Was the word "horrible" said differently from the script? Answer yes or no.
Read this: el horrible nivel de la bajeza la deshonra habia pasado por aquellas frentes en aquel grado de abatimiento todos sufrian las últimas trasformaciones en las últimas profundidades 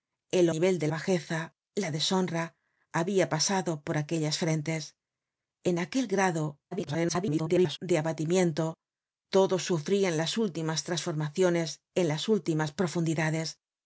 yes